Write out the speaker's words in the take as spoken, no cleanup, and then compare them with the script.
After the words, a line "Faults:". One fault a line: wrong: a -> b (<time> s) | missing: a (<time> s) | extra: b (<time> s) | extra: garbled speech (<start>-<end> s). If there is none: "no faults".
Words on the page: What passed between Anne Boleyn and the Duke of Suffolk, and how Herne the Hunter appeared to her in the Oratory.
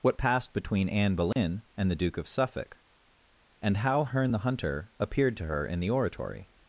What passed between Anne Boleyn and the Duke of Suffolk, and how Herne the Hunter appeared to her in the Oratory.
Faults:
no faults